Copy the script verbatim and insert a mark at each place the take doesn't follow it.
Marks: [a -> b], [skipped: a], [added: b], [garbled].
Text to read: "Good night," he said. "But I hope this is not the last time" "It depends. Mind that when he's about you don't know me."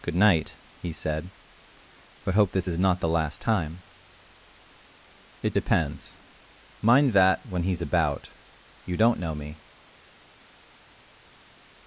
"Good night," he said. "But [skipped: I] hope this is not the last time" "It depends. Mind that when he's about you don't know me."